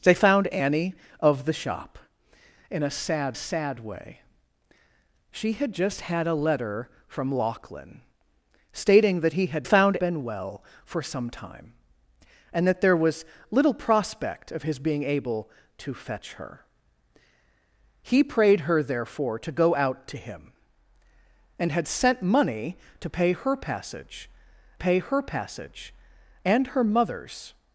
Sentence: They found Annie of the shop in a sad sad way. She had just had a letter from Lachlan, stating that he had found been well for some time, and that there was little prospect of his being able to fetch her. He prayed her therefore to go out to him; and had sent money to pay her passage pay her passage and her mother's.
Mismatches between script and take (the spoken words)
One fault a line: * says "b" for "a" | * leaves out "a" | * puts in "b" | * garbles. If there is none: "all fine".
all fine